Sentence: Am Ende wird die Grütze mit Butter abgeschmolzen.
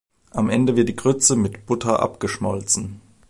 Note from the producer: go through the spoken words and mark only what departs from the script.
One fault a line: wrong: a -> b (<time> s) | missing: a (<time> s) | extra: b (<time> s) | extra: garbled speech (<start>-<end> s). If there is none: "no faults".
no faults